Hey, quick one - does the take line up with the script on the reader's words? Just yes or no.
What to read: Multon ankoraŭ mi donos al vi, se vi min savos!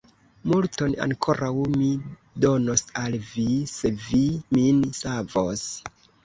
yes